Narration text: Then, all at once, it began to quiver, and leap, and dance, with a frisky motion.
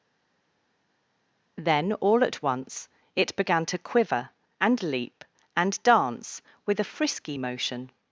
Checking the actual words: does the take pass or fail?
pass